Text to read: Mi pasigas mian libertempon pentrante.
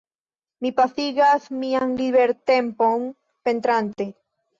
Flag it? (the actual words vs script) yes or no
no